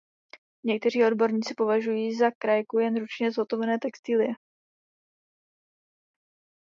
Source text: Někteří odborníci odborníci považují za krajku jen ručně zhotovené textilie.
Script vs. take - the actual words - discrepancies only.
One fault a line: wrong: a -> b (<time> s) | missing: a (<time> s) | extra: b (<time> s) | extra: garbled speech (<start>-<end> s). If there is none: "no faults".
missing: odborníci (1.5 s)